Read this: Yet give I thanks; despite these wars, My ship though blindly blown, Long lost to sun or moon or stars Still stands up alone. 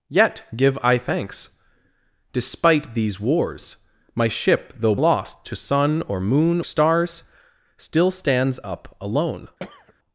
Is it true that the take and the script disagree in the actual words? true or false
true